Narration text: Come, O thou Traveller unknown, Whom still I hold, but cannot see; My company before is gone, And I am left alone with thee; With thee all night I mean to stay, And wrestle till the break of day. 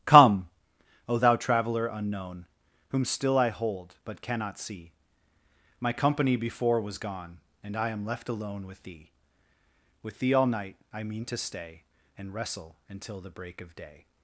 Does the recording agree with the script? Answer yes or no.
no